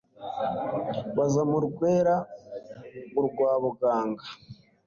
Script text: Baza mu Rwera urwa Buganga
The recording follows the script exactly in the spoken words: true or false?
true